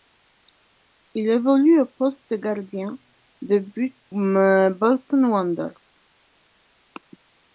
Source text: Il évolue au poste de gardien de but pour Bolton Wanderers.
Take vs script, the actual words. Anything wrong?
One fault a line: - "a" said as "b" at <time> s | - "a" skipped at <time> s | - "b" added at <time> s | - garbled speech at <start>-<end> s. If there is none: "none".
- "pour" skipped at 4.0 s